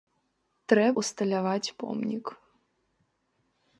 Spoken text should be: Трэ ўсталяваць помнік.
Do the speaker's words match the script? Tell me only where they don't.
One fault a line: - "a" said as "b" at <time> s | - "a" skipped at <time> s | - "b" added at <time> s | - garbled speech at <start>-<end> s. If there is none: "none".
none